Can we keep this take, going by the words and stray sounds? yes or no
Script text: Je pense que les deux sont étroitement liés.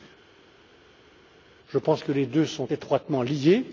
yes